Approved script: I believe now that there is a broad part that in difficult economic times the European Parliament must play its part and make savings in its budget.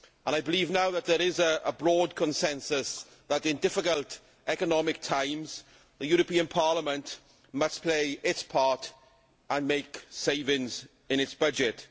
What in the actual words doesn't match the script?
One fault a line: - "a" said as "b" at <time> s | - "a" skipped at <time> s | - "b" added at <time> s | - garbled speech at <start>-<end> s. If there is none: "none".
- "part" said as "consensus" at 2.1 s